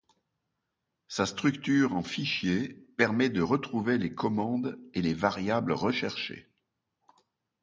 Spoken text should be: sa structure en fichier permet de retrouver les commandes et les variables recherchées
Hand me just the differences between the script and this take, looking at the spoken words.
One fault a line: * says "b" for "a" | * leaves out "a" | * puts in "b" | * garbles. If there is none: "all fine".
all fine